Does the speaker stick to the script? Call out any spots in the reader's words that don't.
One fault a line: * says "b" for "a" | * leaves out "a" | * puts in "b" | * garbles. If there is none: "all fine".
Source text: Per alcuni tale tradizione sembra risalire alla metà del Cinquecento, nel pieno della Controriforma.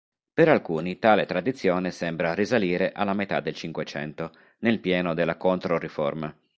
all fine